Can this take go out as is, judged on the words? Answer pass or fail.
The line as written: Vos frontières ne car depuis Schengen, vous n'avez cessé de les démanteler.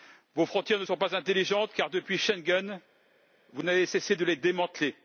fail